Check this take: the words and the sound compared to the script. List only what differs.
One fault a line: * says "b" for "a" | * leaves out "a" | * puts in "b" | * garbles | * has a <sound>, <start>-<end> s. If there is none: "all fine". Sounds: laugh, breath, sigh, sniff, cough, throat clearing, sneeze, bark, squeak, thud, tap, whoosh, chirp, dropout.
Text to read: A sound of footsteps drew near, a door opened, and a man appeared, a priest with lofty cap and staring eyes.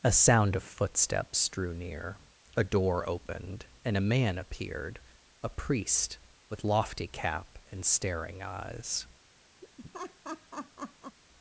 * has a laugh, 9.6-11.2 s